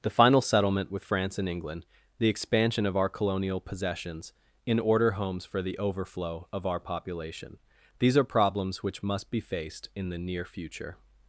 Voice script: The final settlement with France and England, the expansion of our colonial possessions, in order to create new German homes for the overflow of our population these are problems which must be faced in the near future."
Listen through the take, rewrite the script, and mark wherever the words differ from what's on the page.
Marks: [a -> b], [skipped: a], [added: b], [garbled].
The final settlement with France and England, the expansion of our colonial possessions, in order [skipped: to create new German] homes for the overflow of our population these are problems which must be faced in the near future."